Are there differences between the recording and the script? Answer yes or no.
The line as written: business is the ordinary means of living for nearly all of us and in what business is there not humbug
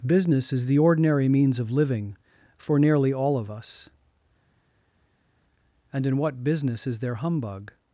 yes